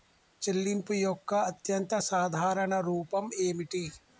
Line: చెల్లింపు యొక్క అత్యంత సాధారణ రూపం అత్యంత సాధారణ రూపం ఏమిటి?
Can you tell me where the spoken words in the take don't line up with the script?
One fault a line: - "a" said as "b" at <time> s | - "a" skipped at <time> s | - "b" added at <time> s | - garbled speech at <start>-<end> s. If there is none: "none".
- "అత్యంత సాధారణ రూపం" skipped at 3.3 s